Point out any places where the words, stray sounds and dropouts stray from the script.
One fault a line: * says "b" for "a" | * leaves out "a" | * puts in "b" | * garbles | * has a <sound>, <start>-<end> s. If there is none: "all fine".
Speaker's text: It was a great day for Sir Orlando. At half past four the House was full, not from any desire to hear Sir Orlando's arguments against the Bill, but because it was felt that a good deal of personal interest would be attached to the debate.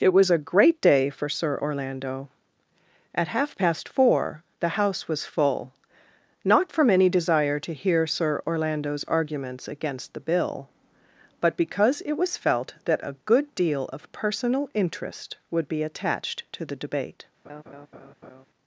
* has a laugh, 17.4-18.5 s